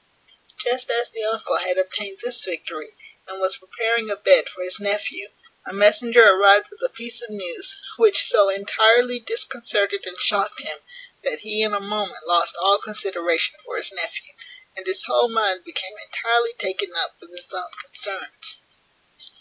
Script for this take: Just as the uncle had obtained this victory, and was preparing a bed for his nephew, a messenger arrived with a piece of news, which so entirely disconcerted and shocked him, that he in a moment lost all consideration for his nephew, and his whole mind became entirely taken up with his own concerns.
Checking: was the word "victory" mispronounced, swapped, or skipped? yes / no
no